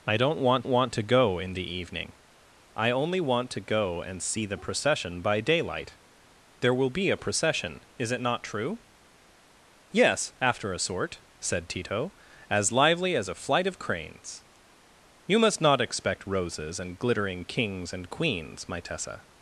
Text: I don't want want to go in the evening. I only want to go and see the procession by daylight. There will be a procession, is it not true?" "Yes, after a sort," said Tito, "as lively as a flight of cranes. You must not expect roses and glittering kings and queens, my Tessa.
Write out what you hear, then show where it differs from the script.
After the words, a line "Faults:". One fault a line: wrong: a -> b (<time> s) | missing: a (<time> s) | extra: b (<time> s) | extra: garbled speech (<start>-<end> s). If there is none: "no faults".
I don't want want to go in the evening. I only want to go and see the procession by daylight. There will be a procession, is it not true?" "Yes, after a sort," said Tito, "as lively as a flight of cranes. You must not expect roses and glittering kings and queens, my Tessa.
Faults:
no faults